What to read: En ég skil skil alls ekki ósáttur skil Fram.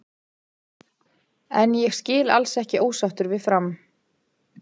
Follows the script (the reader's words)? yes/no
no